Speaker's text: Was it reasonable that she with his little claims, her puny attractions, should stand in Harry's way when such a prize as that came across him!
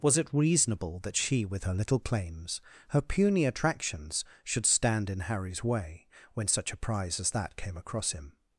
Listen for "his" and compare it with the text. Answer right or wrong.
wrong